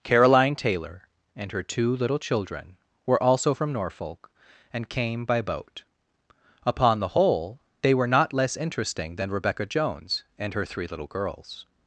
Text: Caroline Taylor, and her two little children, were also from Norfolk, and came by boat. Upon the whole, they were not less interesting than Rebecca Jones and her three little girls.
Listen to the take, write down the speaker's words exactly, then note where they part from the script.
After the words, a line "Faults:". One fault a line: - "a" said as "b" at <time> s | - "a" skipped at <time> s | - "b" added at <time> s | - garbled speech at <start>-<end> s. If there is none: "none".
Caroline Taylor, and her two little children, were also from Norfolk, and came by boat. Upon the whole, they were not less interesting than Rebecca Jones and her three little girls.
Faults:
none